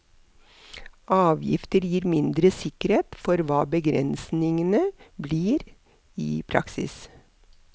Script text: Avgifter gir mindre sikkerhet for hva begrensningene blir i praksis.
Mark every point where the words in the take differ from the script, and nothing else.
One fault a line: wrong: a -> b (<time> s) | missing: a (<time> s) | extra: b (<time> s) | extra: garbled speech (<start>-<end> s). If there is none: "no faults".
no faults